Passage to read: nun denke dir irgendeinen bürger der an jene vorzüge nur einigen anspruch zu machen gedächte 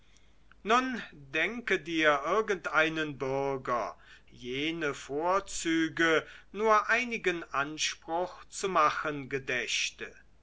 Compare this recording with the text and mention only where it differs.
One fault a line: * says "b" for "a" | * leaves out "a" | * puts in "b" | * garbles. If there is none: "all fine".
* leaves out "der an"